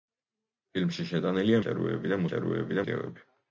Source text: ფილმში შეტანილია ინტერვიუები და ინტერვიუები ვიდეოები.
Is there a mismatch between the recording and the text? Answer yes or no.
no